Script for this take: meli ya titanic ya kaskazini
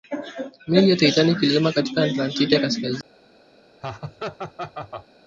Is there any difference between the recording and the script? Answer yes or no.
yes